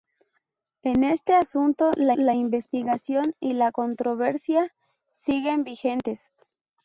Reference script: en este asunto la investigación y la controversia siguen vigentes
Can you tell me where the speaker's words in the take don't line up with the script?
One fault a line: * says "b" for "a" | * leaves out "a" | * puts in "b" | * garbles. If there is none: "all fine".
* puts in "la"